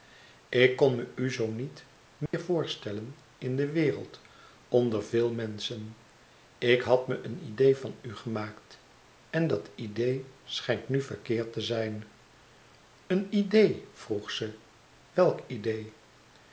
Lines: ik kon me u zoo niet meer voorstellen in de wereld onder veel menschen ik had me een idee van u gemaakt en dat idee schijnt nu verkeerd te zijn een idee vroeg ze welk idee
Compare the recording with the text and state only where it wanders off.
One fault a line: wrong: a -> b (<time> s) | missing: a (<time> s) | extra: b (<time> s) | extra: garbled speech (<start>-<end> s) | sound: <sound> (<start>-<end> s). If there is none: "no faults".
sound: dropout (2.3-2.3 s)